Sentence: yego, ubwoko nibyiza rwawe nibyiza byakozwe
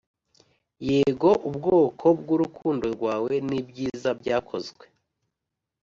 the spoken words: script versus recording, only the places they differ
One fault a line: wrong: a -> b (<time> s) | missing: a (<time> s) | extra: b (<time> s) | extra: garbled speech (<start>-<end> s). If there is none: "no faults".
wrong: nibyiza -> bwurukundo (2.2 s)